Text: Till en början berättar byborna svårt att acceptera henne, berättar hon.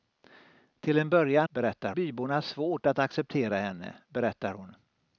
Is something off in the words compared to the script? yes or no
no